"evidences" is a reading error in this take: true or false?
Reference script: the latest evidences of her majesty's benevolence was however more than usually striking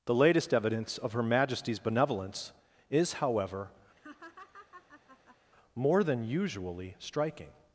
true